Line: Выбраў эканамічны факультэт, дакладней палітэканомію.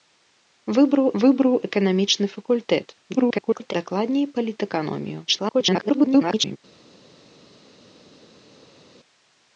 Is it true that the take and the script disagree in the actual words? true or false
true